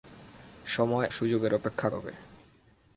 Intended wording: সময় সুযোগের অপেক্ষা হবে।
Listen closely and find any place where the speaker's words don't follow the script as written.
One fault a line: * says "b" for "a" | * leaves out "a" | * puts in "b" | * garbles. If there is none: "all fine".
all fine